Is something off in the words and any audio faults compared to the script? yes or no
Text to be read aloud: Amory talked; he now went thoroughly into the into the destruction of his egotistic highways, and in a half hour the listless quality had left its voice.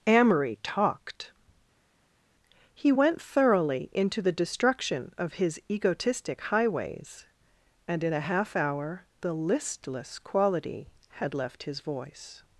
yes